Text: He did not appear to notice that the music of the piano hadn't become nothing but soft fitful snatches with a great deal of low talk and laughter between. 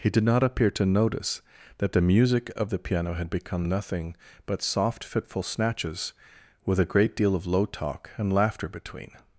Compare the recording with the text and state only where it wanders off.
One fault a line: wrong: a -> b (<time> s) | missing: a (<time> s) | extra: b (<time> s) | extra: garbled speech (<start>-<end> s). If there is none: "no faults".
wrong: hadn't -> had (3.1 s)